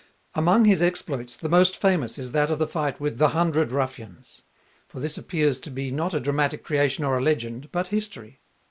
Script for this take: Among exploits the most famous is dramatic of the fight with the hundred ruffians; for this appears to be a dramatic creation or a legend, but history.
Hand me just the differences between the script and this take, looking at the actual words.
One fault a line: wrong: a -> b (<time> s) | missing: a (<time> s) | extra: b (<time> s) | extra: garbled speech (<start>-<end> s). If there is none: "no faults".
extra: his (0.7 s)
wrong: dramatic -> that (2.3 s)
extra: not (5.9 s)